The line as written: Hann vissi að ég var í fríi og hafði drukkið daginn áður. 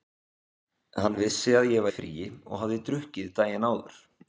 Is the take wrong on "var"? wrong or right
wrong